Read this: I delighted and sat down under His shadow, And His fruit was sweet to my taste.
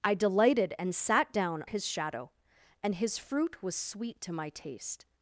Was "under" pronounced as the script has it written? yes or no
no